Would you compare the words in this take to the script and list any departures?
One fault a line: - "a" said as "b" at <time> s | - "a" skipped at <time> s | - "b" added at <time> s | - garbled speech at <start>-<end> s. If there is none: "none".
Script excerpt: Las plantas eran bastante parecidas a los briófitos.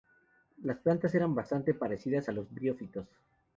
none